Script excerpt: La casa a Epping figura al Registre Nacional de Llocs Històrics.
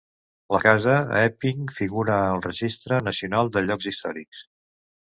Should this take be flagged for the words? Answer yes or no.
no